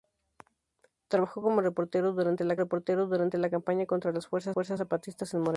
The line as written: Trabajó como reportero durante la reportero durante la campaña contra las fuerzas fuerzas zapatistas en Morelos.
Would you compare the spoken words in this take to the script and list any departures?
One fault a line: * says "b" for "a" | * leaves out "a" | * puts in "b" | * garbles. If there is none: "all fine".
all fine